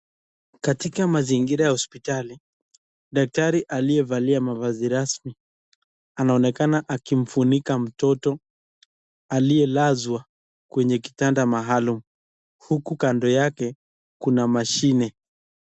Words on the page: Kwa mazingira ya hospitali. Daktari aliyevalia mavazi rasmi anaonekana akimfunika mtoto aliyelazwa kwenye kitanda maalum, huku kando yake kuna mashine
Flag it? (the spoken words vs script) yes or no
yes